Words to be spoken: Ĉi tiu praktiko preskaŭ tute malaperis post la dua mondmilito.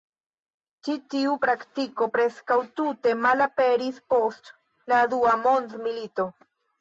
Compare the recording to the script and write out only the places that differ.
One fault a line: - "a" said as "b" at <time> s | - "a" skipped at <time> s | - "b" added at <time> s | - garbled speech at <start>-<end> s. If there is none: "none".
none